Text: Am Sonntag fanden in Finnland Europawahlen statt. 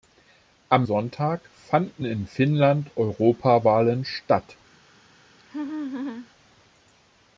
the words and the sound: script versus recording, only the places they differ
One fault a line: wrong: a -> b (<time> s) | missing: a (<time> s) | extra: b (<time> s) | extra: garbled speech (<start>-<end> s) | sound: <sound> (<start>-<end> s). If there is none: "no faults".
sound: laugh (5.4-6.3 s)